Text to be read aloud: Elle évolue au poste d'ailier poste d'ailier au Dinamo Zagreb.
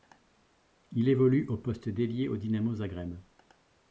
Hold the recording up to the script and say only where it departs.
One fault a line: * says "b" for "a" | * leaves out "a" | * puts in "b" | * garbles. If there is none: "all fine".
* says "Il" for "Elle"
* leaves out "poste d'ailier"